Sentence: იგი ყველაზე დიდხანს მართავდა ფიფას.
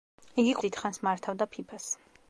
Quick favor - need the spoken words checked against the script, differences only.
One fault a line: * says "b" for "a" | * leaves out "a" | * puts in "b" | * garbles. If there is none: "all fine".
* leaves out "ყველაზე"